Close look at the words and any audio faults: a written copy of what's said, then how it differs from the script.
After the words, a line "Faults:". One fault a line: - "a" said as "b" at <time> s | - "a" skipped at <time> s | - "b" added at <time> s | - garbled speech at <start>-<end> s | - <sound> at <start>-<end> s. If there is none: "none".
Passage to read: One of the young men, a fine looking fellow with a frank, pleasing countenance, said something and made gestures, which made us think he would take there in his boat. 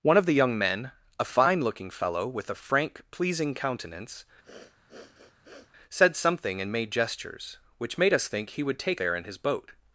One of the young men, a fine looking fellow with a frank, pleasing countenance, said something and made gestures, which made us think he would take there in his boat.
Faults:
- sniff at 4.4-5.7 s